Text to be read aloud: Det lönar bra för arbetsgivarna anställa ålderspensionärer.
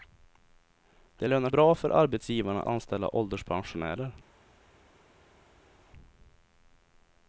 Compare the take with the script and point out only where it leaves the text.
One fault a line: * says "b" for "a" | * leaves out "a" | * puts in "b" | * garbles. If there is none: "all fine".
all fine